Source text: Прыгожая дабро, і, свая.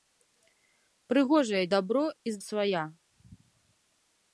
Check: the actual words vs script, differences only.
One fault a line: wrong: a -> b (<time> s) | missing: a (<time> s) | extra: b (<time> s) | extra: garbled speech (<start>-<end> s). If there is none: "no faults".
no faults